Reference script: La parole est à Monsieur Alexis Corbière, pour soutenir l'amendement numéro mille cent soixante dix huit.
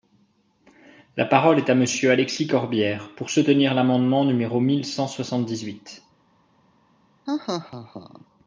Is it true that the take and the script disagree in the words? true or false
false